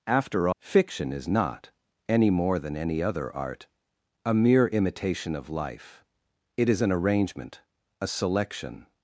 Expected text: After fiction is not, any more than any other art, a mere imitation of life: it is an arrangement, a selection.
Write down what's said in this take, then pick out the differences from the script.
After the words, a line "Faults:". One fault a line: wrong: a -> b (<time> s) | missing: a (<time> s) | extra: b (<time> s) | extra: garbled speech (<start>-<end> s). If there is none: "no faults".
After fiction is not, any more than any other art, a mere imitation of life: it is an arrangement, a selection.
Faults:
no faults